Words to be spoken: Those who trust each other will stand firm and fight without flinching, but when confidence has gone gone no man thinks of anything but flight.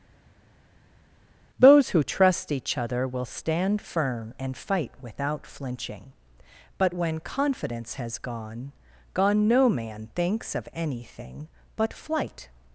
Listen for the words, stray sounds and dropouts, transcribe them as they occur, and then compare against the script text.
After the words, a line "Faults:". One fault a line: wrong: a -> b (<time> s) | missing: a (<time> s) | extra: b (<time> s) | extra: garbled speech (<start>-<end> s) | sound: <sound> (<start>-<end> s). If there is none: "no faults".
Those who trust each other will stand firm and fight without flinching, but when confidence has gone gone no man thinks of anything but flight.
Faults:
no faults